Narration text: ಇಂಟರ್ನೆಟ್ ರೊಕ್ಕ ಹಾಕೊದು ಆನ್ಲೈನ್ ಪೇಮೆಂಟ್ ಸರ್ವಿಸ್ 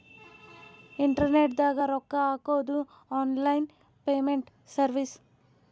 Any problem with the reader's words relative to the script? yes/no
yes